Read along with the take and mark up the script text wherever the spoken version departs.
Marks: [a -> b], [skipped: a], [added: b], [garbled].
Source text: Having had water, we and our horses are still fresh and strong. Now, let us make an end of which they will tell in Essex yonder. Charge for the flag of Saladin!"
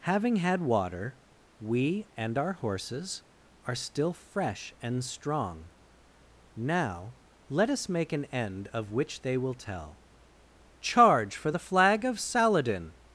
Having had water, we and our horses are still fresh and strong. Now, let us make an end of which they will tell [skipped: in Essex yonder.] Charge for the flag of Saladin!"